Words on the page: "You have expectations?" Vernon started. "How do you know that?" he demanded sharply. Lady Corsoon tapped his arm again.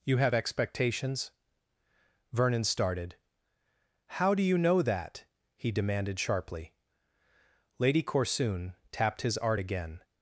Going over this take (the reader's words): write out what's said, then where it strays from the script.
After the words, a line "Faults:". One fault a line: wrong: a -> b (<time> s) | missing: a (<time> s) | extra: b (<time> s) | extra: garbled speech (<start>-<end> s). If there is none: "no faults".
"You have expectations?" Vernon started. "How do you know that?" he demanded sharply. Lady Corsoon tapped his art again.
Faults:
wrong: arm -> art (9.4 s)